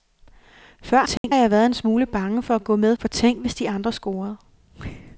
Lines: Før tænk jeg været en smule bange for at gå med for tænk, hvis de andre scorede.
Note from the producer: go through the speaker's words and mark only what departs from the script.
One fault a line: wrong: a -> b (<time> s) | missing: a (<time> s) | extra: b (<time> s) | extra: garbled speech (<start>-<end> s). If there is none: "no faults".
no faults